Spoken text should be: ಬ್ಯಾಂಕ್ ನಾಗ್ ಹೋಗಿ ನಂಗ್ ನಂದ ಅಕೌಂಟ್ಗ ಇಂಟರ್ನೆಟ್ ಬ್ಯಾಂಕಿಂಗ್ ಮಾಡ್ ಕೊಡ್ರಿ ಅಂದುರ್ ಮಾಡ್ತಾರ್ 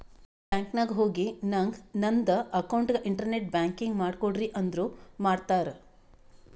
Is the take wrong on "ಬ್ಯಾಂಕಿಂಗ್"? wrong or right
right